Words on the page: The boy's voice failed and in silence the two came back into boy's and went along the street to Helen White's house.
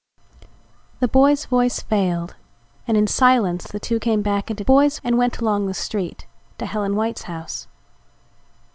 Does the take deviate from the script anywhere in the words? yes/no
no